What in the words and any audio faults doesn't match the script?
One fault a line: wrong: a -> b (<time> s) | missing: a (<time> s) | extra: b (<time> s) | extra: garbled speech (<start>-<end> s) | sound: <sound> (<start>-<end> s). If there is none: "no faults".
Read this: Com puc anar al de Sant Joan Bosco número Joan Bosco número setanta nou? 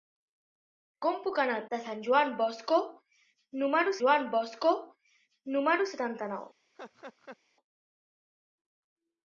sound: laugh (6.7-7.4 s)